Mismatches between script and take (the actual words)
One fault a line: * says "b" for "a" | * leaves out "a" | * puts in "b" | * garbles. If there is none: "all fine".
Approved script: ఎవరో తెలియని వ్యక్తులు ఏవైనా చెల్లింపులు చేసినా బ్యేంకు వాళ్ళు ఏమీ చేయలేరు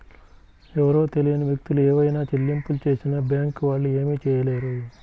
all fine